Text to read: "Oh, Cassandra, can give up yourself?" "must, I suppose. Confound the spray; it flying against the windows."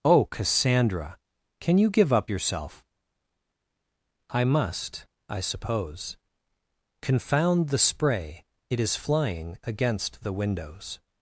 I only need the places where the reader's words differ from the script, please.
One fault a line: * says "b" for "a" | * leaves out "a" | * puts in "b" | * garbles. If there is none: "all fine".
* puts in "you"
* puts in "I"
* puts in "is"